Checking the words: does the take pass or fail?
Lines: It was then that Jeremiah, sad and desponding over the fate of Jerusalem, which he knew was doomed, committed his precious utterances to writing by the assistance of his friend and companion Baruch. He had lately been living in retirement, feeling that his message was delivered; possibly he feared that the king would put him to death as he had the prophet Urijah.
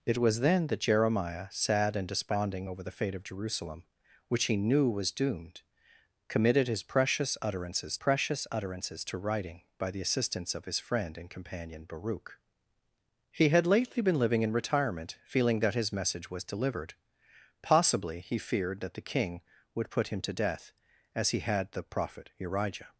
fail